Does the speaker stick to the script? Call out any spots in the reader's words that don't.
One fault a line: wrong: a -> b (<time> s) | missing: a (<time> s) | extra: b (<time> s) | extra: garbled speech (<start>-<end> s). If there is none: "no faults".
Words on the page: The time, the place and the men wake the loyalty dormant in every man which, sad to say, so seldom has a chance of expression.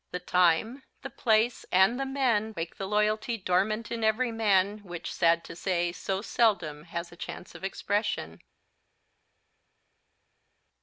no faults